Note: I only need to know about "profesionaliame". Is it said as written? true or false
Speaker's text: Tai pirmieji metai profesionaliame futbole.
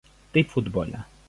false